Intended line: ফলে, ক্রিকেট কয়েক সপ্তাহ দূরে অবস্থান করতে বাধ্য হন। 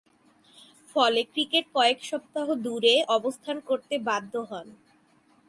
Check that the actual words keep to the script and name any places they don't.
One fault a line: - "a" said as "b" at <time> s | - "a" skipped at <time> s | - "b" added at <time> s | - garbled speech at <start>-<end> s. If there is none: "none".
none